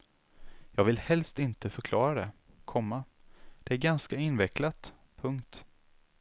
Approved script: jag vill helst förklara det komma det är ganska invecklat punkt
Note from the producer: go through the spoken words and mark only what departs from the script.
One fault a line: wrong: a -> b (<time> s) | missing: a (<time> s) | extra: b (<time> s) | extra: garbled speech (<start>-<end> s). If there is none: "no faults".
extra: inte (1.4 s)